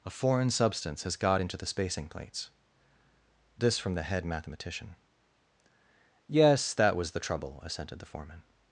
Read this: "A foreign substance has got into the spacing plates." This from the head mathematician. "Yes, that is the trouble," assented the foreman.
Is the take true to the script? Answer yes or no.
no